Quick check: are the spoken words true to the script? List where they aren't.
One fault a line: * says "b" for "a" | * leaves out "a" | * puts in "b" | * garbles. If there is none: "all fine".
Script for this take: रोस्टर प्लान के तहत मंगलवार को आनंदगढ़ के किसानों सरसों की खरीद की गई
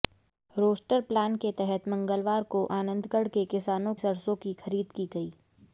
all fine